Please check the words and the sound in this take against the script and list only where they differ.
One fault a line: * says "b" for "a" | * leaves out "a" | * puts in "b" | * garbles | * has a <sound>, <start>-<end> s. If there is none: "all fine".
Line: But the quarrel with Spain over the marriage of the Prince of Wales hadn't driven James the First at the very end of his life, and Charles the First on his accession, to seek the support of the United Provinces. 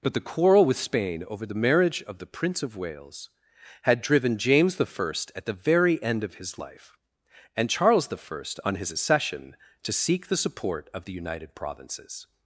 * says "had" for "hadn't"